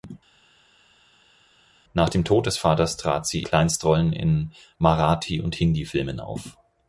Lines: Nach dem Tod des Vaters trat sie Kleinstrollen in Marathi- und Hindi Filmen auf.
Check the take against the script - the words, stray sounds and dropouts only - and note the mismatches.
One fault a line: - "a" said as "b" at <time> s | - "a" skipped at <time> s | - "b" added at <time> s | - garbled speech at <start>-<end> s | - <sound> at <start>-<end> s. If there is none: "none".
none